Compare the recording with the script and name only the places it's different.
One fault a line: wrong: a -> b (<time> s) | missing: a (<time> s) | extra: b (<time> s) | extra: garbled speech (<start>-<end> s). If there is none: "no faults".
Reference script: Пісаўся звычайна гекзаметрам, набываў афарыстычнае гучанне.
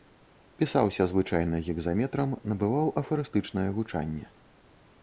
no faults